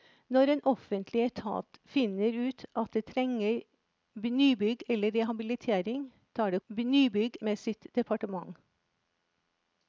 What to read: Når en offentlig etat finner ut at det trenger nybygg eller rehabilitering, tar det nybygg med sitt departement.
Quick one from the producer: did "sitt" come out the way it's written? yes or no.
yes